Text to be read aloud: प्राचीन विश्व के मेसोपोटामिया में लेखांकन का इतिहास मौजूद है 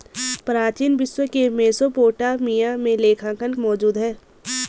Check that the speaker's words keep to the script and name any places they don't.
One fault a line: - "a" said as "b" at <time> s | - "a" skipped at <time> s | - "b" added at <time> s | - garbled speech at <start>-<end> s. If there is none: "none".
- "का इतिहास" skipped at 3.5 s